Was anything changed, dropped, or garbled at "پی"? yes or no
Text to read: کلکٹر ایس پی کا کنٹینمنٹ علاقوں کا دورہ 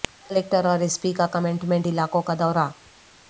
no